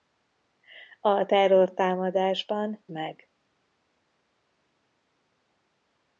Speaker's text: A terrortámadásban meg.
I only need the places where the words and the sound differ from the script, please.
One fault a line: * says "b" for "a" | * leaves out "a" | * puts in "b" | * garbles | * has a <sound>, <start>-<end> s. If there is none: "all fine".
all fine